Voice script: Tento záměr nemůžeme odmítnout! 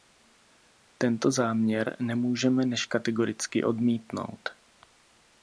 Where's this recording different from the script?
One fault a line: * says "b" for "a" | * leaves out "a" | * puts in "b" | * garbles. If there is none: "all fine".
* puts in "než kategoricky"